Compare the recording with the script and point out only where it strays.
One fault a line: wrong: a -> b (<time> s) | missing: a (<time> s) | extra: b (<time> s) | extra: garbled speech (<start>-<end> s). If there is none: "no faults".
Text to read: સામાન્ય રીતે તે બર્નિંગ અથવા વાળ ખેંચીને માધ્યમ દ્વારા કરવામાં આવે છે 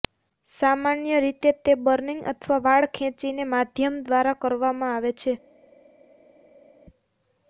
no faults